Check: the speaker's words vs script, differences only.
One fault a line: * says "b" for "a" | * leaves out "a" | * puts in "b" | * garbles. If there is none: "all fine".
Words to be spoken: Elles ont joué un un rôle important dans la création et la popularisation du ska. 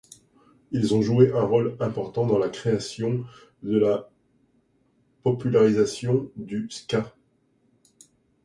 * says "Ils" for "Elles"
* leaves out "un"